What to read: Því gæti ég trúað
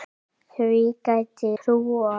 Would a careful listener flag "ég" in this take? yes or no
yes